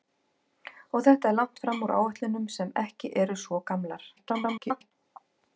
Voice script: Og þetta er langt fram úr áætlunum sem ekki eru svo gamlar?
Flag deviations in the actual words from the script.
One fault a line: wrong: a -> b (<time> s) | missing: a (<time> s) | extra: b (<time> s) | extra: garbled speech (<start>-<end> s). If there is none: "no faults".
extra: garbled speech (4.2-4.9 s)